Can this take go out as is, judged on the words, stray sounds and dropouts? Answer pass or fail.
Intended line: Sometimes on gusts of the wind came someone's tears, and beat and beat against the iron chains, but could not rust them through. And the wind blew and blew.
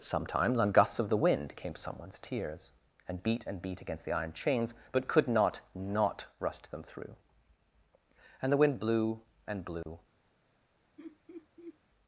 fail